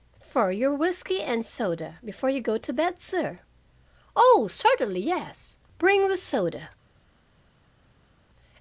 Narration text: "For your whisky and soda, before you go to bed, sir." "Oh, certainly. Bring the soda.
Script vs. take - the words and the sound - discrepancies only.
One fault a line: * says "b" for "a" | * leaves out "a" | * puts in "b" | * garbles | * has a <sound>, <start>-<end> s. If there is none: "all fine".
* puts in "yes"